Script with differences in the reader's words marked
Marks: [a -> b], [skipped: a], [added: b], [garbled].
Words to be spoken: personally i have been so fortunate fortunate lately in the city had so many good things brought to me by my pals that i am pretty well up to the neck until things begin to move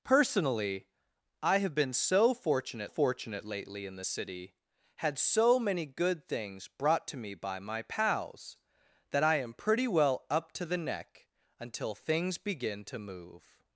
personally i have been so fortunate fortunate lately in the city had so many good things brought to me by my pals that i am pretty well up to the neck until things begin to move